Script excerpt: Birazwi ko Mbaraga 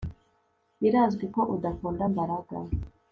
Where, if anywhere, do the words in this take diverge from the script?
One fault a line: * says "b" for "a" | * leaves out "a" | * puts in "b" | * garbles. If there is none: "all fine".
* puts in "udakunda"